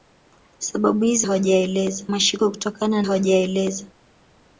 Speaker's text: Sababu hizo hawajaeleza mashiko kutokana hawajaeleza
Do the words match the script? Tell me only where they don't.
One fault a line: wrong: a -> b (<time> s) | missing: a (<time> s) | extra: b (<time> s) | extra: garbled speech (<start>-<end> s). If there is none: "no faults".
no faults